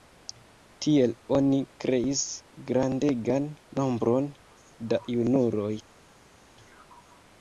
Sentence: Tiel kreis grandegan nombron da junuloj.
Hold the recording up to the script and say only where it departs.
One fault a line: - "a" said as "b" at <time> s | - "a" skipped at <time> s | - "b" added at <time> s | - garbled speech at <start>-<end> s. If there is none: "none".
- "oni" added at 1.4 s